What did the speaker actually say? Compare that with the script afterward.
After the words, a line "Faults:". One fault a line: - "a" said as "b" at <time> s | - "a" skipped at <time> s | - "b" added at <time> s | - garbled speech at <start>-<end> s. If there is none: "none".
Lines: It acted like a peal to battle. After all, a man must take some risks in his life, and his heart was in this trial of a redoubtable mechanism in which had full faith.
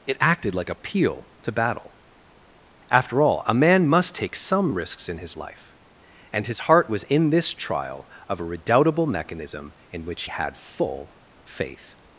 It acted like a peal to battle. After all, a man must take some risks in his life, and his heart was in this trial of a redoubtable mechanism in which had full faith.
Faults:
none